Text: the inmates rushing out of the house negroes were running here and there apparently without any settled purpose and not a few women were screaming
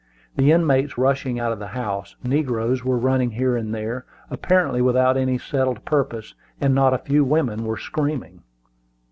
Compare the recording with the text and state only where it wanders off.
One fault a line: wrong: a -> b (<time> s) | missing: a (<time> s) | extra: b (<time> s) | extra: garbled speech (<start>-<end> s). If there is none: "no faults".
no faults